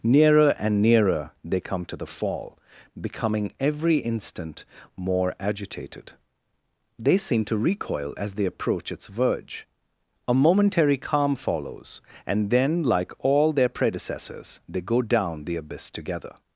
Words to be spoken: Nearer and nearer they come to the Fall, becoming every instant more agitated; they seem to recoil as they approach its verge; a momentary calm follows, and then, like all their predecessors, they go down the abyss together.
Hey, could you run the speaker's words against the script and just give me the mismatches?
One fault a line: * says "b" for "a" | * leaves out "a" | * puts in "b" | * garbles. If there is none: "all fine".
all fine